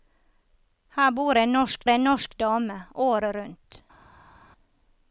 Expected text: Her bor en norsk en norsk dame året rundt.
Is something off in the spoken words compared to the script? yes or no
no